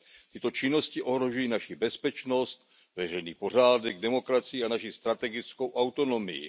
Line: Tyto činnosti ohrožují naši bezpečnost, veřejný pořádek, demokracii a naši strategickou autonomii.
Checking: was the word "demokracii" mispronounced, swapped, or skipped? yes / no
no